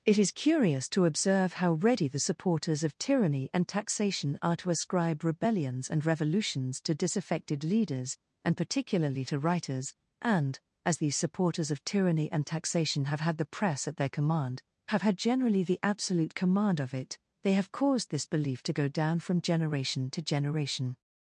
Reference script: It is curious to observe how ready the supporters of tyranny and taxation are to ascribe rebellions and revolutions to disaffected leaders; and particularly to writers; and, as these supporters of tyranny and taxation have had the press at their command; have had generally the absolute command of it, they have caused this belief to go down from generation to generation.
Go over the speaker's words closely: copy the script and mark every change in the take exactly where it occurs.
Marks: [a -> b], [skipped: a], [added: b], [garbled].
It is curious to observe how ready the supporters of tyranny and taxation are to ascribe rebellions and revolutions to disaffected leaders; and particularly to writers; and, as these supporters of tyranny and taxation have had the press at their command; have had generally the absolute command of it, they have caused this belief to go down from generation to generation.